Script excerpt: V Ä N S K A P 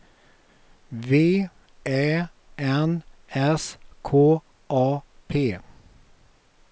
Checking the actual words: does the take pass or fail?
pass